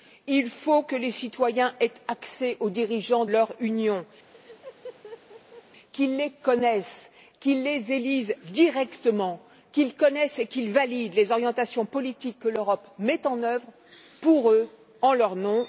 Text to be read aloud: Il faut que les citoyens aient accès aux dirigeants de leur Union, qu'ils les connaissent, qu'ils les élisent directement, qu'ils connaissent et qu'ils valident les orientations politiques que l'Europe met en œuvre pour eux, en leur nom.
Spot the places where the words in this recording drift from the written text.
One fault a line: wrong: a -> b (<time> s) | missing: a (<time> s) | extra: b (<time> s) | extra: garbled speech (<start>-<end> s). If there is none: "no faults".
missing: de (3.2 s)